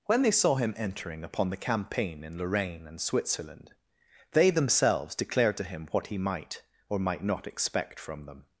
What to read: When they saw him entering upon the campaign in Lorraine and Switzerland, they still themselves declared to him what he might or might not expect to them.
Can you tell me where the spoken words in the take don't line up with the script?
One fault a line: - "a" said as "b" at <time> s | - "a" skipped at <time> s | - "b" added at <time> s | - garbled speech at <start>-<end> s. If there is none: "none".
- "still" skipped at 4.5 s
- "to" said as "from" at 8.0 s